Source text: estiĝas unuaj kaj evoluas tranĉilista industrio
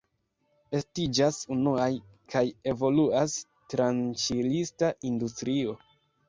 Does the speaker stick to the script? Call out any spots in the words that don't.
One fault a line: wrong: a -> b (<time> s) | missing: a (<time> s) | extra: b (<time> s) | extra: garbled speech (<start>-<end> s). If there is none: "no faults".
no faults